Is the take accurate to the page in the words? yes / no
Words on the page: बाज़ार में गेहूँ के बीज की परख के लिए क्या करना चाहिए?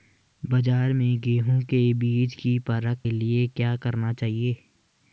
no